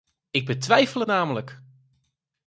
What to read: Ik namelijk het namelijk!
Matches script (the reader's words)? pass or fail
fail